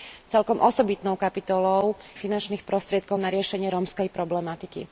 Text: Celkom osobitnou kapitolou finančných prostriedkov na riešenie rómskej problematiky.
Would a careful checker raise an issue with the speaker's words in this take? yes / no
no